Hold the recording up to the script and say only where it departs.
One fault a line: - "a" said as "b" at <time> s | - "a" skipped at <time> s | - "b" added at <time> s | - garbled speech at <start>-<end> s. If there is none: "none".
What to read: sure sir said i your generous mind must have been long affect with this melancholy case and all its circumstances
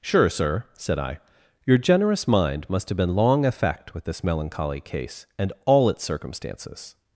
none